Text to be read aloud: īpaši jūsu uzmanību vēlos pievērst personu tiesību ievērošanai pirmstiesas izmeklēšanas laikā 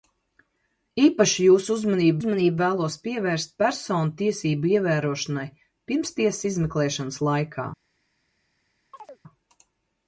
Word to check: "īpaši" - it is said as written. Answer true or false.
true